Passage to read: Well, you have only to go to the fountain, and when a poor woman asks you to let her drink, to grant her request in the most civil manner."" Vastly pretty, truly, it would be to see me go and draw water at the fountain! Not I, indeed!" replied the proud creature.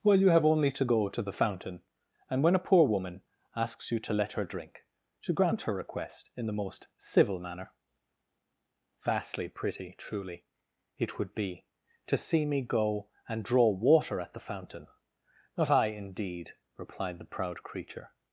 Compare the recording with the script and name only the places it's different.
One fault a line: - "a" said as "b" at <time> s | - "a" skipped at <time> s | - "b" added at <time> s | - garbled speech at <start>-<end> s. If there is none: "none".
none